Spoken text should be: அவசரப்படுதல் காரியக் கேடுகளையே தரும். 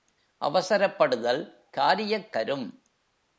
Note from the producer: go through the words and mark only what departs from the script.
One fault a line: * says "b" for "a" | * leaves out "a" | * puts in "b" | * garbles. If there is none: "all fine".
* leaves out "கேடுகளையே"